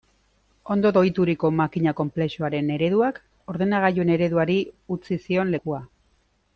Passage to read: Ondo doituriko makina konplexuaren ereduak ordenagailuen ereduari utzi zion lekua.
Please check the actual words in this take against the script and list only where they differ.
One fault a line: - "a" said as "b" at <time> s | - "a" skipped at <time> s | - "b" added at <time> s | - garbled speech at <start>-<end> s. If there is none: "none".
none